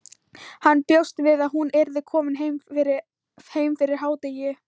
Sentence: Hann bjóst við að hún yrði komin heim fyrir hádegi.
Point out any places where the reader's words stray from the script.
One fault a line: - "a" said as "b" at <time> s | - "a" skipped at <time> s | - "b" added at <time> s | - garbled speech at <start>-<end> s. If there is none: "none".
none